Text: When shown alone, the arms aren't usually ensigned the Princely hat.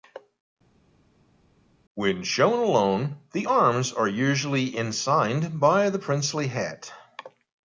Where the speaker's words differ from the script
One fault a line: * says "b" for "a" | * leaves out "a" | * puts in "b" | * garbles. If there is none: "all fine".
* says "are" for "aren't"
* puts in "by"